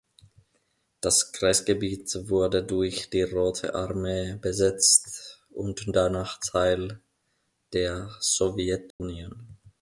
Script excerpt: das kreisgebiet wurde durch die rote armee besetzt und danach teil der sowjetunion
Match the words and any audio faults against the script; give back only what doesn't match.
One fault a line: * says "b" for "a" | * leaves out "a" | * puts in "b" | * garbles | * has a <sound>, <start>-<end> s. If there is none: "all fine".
* has a dropout, 8.9-9.0 s